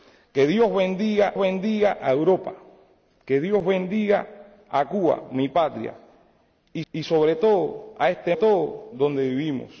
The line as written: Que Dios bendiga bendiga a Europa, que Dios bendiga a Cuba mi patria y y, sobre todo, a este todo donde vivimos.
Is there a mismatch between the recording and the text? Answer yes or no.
no